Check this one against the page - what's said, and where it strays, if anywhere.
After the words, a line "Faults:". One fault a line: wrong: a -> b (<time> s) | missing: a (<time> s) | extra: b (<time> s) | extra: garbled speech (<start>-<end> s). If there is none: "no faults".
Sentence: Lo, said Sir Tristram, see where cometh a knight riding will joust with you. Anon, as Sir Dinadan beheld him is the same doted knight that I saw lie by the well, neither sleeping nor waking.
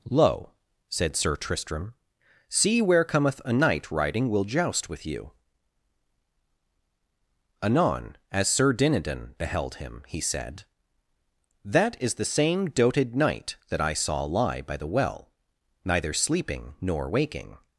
Lo, said Sir Tristram, see where cometh a knight riding will joust with you. Anon, as Sir Dinadan beheld him he said: That is the same doted knight that I saw lie by the well, neither sleeping nor waking.
Faults:
extra: he said That (10.1 s)